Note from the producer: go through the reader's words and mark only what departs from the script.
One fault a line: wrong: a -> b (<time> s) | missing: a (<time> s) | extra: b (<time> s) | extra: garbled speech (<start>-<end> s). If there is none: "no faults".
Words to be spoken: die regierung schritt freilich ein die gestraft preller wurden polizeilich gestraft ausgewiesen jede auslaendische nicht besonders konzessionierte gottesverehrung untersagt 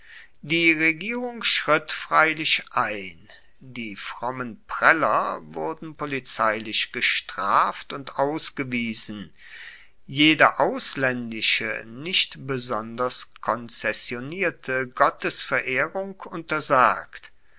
wrong: gestraft -> frommen (4.0 s)
extra: und (7.9 s)